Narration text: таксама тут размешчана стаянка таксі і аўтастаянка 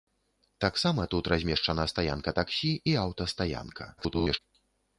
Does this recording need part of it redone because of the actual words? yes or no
yes